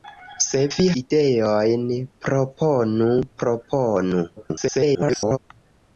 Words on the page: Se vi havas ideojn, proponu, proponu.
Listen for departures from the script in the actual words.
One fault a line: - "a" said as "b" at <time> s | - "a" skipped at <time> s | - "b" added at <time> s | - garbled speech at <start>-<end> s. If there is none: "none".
- "havas" skipped at 0.9 s
- garbled speech at 4.4-5.4 s